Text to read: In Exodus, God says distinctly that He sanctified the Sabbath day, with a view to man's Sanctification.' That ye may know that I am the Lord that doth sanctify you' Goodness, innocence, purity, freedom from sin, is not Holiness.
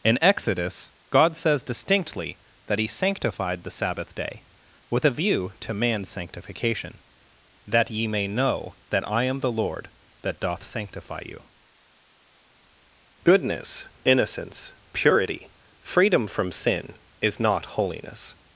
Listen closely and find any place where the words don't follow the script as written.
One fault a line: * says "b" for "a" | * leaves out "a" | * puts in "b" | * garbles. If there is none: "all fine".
all fine